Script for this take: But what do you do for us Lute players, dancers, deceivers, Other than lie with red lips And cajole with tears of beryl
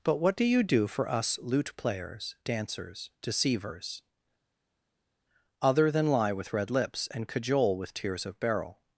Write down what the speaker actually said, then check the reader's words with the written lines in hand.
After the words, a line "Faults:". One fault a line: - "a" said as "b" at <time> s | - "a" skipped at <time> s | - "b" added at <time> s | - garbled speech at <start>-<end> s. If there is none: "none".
But what do you do for us Lute players, dancers, deceivers, Other than lie with red lips And cajole with tears of beryl
Faults:
none